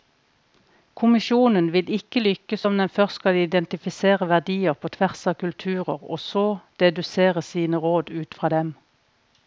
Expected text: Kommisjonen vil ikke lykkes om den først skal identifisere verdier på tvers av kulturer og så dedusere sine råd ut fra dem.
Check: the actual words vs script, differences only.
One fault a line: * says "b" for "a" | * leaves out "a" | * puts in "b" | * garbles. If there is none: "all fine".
all fine